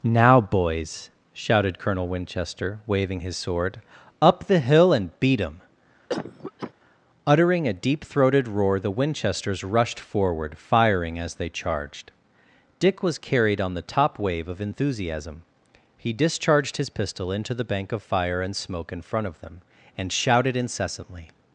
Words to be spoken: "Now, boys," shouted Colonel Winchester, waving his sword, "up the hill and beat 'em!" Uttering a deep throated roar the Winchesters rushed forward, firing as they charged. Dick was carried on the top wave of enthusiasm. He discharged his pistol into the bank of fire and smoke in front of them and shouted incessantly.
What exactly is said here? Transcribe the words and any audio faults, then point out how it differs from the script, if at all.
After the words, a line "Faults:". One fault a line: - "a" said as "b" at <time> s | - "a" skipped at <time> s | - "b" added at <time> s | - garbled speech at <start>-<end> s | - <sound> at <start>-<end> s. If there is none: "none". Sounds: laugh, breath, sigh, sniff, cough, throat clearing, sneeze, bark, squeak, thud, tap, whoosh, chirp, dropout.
"Now, boys," shouted Colonel Winchester, waving his sword, "up the hill and beat 'em!" Uttering a deep throated roar the Winchesters rushed forward, firing as they charged. Dick was carried on the top wave of enthusiasm. He discharged his pistol into the bank of fire and smoke in front of them and shouted incessantly.
Faults:
- cough at 6.1-6.7 s